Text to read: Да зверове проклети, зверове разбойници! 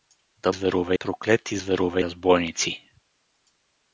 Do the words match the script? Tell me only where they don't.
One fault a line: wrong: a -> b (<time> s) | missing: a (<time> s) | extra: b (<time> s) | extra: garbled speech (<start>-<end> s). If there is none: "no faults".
no faults